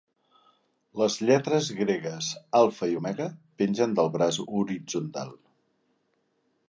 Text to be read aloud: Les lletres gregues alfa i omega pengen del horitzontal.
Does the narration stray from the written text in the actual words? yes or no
yes